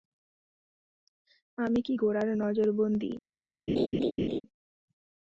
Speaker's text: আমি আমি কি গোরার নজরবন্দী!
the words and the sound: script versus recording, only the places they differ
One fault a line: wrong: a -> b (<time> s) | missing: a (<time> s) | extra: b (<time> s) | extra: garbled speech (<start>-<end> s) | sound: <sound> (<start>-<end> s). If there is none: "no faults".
missing: আমি (1.8 s)
sound: laugh (3.7-4.4 s)